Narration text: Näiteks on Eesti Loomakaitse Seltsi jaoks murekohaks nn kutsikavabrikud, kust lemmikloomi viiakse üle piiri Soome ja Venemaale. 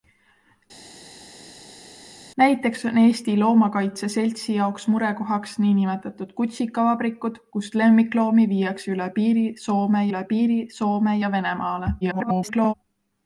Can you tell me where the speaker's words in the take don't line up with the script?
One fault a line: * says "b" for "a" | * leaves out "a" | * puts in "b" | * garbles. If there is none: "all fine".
* puts in "üle piiri Soome"
* garbles